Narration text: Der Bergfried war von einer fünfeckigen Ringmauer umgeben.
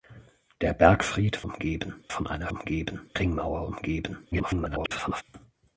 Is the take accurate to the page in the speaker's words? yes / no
no